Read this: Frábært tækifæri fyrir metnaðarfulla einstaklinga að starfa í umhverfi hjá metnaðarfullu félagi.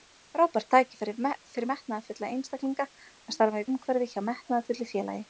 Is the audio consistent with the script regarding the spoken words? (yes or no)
yes